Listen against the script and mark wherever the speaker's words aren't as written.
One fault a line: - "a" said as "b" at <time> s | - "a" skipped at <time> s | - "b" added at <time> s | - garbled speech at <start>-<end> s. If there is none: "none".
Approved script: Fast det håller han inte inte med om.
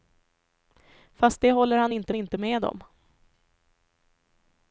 none